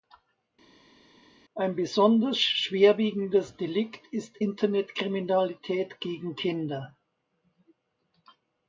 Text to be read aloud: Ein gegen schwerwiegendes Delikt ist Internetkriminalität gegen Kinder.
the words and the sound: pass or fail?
fail